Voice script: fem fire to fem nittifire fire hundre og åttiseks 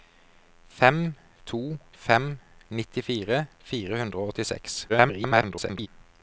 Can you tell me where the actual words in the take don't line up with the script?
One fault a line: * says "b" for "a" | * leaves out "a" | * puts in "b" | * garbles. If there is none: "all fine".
* leaves out "fire"
* garbles